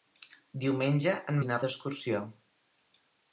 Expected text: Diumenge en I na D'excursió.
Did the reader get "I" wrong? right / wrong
right